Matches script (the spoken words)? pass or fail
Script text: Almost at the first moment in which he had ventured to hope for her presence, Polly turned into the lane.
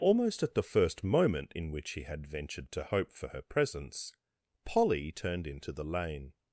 pass